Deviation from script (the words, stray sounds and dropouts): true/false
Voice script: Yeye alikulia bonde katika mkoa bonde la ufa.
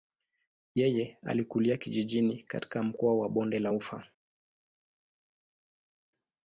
true